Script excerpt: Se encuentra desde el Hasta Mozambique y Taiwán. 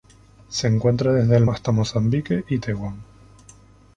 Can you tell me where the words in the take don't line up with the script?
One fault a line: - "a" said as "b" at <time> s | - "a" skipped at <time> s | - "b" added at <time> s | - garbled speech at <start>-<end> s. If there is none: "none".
none